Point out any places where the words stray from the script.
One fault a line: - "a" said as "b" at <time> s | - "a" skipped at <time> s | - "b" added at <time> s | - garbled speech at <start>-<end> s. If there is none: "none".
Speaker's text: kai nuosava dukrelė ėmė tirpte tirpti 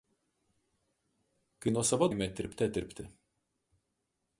- "dukrelė" skipped at 2.1 s